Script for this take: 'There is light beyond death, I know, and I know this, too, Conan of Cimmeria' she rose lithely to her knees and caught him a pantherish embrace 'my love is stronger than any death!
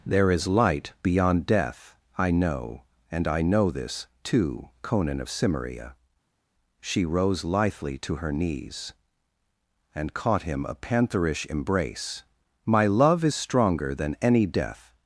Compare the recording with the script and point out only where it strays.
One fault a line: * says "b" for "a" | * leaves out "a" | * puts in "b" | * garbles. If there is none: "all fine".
all fine